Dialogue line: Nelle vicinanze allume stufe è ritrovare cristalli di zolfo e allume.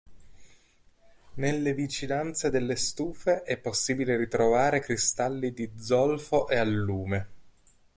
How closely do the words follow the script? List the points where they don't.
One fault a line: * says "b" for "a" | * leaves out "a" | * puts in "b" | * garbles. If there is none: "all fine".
* says "delle" for "allume"
* puts in "possibile"